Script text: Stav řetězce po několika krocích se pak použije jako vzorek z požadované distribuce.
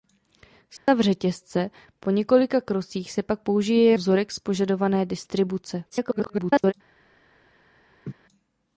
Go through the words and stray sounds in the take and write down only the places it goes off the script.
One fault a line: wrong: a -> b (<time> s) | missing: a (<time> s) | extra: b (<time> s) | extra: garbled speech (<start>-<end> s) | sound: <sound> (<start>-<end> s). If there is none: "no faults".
sound: dropout (0.8-0.9 s)
missing: jako (3.9 s)
extra: garbled speech (5.9-6.7 s)
sound: laugh (8.0-8.1 s)